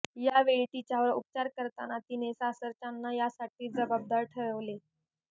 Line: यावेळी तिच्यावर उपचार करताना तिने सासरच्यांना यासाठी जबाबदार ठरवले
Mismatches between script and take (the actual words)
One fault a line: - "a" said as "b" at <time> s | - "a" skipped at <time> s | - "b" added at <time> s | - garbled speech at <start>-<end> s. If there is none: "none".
none